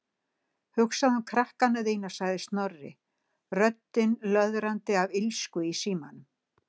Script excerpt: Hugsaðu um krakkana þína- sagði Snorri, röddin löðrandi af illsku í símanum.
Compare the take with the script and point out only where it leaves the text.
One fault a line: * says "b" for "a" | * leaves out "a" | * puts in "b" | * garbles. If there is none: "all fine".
all fine